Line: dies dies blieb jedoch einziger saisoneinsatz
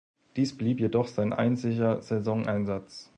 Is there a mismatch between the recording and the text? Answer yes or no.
yes